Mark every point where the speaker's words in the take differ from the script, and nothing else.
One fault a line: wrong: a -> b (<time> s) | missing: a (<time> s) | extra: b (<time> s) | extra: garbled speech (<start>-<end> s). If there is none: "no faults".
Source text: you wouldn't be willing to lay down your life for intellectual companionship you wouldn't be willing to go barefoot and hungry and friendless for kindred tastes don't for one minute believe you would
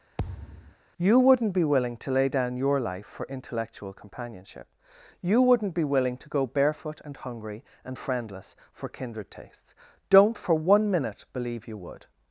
no faults